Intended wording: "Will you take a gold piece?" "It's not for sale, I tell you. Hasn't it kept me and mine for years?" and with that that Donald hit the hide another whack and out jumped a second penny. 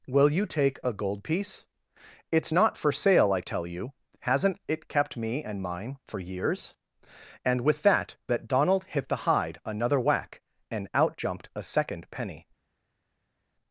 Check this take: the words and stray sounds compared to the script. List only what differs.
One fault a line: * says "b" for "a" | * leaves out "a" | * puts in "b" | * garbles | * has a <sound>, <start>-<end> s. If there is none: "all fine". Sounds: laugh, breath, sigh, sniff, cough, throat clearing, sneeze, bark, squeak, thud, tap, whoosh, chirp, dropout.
all fine